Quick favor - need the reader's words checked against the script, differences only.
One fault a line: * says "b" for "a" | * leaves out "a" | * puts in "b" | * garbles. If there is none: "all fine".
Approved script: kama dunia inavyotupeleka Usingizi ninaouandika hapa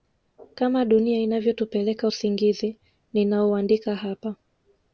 all fine